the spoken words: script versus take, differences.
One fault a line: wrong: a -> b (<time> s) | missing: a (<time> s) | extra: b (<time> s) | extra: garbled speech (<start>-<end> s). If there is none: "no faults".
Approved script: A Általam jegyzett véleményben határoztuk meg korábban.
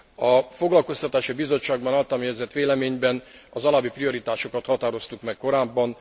extra: Foglalkoztatási Bizottságban (0.5 s)
extra: az alábbi prioritásokat (3.5 s)